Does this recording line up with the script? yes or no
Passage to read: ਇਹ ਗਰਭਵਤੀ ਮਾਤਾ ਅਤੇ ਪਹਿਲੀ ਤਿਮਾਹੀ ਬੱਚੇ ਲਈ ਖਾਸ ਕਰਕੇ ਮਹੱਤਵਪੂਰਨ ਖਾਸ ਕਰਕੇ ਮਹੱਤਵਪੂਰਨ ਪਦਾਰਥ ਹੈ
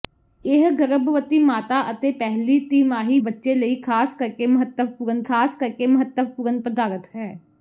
yes